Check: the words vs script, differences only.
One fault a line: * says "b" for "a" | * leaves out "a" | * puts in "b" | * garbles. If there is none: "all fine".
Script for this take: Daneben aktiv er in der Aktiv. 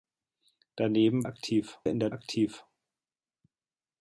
all fine